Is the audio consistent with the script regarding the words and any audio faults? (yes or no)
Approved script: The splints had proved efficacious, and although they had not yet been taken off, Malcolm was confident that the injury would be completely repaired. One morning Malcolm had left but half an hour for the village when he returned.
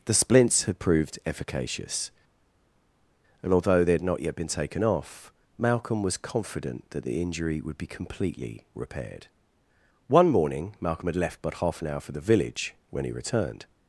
yes